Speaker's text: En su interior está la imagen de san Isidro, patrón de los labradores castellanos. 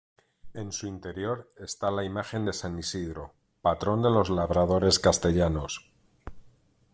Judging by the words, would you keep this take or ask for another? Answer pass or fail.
pass